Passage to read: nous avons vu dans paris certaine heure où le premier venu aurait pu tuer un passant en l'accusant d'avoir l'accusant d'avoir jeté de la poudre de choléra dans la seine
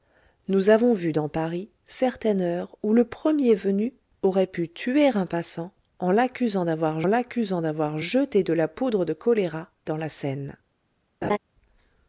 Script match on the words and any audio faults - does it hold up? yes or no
no